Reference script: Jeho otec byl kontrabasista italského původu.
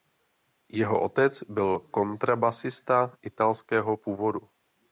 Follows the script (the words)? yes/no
yes